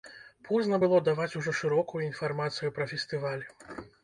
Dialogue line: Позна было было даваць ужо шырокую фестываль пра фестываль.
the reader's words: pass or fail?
fail